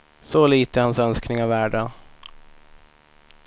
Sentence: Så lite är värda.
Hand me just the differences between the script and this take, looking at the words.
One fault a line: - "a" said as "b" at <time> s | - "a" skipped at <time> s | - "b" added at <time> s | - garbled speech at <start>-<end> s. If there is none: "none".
- "hans önskningar" added at 0.8 s